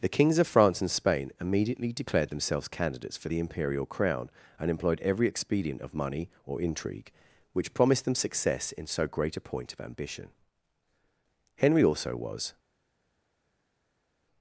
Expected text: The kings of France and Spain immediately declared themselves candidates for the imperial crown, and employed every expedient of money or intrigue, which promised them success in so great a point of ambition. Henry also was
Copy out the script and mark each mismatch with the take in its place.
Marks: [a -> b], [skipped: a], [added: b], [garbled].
The kings of France and Spain immediately declared themselves candidates for the imperial crown, and employed every expedient of money or intrigue, which promised them success in so great a point of ambition. Henry also was